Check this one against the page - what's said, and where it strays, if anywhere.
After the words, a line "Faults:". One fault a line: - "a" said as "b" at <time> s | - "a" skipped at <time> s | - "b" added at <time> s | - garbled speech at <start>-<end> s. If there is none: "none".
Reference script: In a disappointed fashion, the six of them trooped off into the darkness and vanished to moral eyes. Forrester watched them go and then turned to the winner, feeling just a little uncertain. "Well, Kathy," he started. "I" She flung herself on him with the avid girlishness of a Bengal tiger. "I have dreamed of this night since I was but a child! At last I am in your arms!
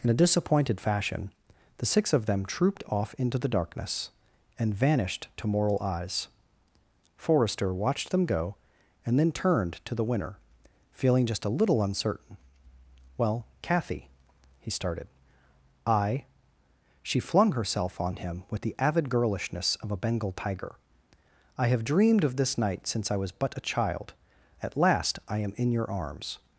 In a disappointed fashion, the six of them trooped off into the darkness and vanished to moral eyes. Forrester watched them go and then turned to the winner, feeling just a little uncertain. "Well, Kathy," he started. "I" She flung herself on him with the avid girlishness of a Bengal tiger. "I have dreamed of this night since I was but a child! At last I am in your arms!
Faults:
none